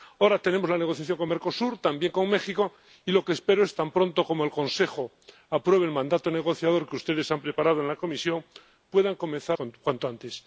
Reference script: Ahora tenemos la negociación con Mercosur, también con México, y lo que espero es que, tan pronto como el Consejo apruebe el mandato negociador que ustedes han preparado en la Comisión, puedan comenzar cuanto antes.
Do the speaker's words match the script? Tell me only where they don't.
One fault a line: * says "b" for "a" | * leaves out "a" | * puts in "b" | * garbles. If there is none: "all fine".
all fine